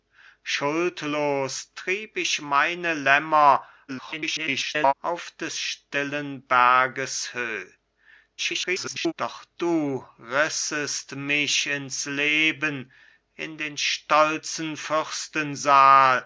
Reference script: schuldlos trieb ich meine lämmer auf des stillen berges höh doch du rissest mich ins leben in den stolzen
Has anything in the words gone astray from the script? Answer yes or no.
yes